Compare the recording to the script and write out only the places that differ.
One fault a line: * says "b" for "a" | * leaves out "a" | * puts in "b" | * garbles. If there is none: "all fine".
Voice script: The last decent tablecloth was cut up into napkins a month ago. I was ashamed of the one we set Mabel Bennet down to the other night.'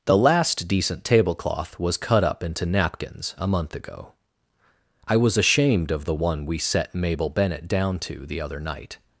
all fine